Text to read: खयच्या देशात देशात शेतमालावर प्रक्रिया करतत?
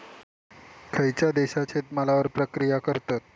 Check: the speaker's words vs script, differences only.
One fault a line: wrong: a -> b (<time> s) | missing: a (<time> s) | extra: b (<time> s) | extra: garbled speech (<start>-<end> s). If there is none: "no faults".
missing: देशात (1.7 s)